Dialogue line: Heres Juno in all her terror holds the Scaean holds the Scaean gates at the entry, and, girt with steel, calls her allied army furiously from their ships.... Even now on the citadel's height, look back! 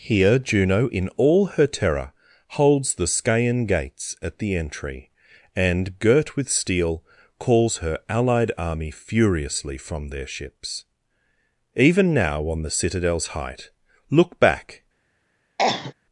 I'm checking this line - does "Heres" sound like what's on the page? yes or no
no